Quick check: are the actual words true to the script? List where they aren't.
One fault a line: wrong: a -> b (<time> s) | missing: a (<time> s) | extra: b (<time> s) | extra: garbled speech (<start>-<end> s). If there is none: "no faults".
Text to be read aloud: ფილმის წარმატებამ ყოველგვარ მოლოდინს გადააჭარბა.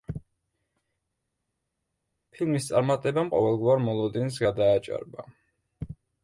no faults